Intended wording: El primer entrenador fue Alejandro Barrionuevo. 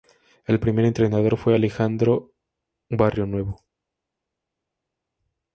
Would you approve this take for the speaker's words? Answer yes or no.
yes